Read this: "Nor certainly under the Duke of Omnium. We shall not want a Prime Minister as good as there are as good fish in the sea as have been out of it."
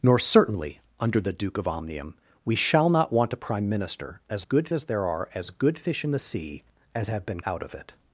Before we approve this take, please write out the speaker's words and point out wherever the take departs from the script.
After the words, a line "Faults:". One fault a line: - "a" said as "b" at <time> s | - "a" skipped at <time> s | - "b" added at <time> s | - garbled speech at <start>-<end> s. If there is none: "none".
"Nor certainly under the Duke of Omnium. We shall not want a Prime Minister as good as there are as good fish in the sea as have been out of it."
Faults:
none